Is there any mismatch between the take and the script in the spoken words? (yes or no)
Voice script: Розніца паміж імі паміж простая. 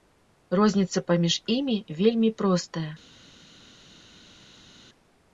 yes